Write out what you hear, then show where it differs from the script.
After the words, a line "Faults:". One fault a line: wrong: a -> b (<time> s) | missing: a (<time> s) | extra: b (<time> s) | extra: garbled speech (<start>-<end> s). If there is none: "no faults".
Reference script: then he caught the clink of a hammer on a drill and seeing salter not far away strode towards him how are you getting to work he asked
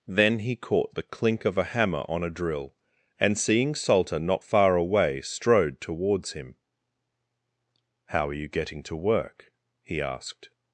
then he caught the clink of a hammer on a drill and seeing salter not far away strode towards him how are you getting to work he asked
Faults:
no faults